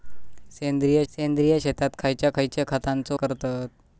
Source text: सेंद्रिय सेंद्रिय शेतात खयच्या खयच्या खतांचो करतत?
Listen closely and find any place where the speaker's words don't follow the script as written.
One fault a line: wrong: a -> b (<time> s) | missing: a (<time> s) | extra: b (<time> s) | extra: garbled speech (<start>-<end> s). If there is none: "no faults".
no faults